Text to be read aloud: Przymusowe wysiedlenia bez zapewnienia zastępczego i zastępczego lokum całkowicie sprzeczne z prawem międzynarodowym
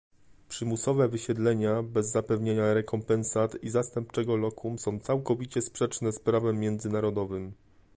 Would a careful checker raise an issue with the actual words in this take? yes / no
yes